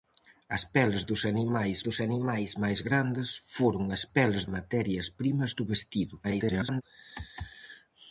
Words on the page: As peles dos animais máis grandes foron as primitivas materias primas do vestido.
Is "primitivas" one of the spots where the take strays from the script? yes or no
yes